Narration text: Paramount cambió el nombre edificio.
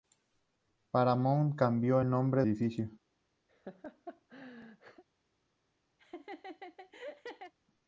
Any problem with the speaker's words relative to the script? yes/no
no